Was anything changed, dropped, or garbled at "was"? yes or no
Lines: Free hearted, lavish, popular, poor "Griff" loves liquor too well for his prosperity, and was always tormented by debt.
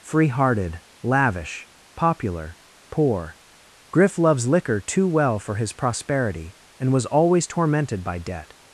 no